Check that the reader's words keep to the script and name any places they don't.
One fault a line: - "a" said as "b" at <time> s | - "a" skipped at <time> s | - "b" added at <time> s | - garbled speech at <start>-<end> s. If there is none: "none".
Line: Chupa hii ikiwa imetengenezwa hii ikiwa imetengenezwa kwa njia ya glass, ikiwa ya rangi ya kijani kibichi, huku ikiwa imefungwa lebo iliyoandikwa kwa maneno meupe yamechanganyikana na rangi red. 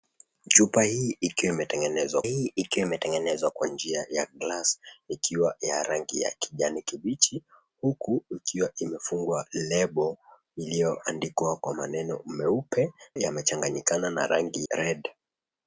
none